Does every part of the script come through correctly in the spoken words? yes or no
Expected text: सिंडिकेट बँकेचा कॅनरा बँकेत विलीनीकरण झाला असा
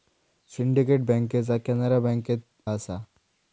no